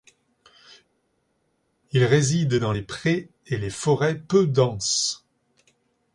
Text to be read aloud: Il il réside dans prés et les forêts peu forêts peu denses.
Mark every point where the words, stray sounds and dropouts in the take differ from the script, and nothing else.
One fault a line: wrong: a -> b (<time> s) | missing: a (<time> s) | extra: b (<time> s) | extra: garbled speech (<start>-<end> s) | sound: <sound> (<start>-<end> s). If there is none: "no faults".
missing: il (2.0 s)
extra: les (2.7 s)
missing: forêts peu (4.5 s)